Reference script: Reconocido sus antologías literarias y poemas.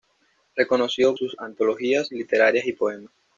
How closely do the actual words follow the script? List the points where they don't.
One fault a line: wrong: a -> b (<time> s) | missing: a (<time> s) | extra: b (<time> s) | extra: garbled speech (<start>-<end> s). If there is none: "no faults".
no faults